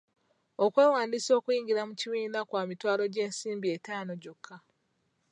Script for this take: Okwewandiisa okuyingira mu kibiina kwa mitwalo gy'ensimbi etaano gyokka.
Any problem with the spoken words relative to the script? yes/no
no